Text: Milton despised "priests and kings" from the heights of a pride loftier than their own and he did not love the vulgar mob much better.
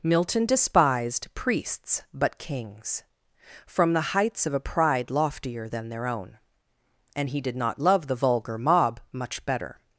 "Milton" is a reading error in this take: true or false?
false